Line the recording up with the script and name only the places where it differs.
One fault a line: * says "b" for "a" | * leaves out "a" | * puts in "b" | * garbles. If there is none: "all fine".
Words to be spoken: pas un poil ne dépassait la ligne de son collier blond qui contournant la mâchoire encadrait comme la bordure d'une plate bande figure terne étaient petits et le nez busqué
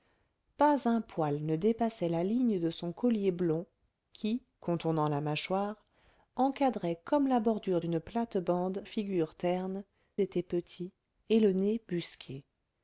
all fine